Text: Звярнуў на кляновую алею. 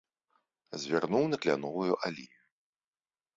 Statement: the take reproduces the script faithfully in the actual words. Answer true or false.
true